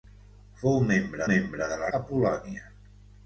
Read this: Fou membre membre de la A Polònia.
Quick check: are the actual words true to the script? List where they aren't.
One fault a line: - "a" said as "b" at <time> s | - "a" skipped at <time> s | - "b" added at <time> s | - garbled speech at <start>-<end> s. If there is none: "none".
none